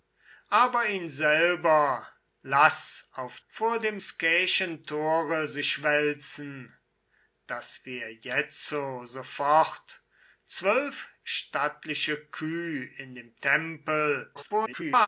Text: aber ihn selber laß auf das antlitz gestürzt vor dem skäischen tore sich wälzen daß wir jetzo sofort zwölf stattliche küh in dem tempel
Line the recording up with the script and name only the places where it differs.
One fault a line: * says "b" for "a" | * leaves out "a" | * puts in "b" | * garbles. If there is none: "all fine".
* leaves out "das antlitz gestürzt"
* garbles